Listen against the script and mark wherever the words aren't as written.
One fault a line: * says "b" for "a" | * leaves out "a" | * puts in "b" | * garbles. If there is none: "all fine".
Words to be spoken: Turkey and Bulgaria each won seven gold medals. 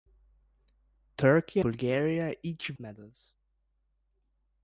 * leaves out "and"
* leaves out "won seven gold"